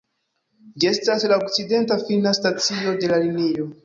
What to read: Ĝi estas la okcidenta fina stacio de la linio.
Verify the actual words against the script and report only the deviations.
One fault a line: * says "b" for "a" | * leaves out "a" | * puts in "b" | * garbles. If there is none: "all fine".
all fine